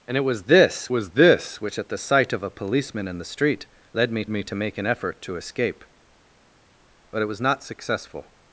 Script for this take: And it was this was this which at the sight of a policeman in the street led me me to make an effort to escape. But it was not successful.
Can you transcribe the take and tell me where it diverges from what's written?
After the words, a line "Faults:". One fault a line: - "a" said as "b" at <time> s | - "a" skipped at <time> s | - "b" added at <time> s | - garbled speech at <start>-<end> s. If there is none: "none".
And it was this was this which at the sight of a policeman in the street led me me to make an effort to escape. But it was not successful.
Faults:
none